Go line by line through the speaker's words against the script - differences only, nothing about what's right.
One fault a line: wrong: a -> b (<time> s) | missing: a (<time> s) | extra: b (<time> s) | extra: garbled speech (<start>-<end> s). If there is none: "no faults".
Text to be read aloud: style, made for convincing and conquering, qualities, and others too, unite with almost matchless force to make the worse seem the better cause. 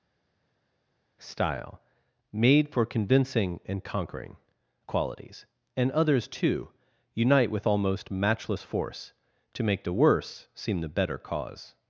no faults